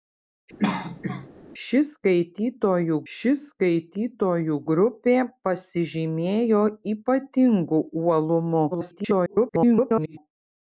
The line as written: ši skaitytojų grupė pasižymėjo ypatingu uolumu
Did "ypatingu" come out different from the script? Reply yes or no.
no